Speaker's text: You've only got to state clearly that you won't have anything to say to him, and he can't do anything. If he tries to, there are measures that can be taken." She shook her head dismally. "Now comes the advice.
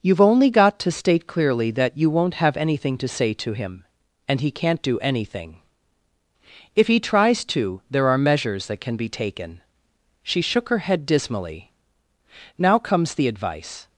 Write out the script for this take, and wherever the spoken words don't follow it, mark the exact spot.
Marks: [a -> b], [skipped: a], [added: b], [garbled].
You've only got to state clearly that you won't have anything to say to him, and he can't do anything. If he tries to, there are measures that can be taken." She shook her head dismally. "Now comes the advice.